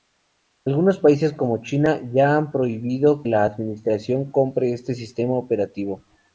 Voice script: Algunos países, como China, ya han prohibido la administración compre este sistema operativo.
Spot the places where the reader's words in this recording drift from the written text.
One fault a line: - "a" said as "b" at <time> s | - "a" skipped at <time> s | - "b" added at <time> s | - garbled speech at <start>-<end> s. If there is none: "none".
none